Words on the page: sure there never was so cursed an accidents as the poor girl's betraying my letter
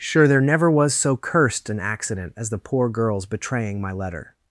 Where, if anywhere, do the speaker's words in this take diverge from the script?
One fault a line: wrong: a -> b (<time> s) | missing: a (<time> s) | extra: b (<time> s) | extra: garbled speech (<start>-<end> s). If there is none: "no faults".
wrong: accidents -> accident (1.8 s)